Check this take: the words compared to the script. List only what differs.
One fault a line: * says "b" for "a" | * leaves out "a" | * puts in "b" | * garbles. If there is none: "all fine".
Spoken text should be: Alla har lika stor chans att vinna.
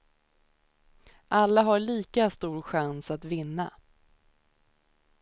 all fine